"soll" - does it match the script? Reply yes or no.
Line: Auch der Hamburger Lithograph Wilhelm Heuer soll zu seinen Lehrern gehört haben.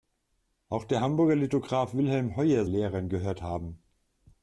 no